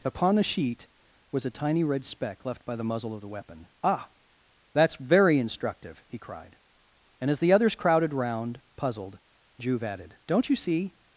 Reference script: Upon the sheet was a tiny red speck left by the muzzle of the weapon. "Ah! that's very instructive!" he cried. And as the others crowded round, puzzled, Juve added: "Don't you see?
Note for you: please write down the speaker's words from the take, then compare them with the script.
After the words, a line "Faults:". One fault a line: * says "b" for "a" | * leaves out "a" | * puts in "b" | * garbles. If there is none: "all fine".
Upon the sheet was a tiny red speck left by the muzzle of the weapon. "Ah! that's very instructive!" he cried. And as the others crowded round, puzzled, Juve added: "Don't you see?
Faults:
all fine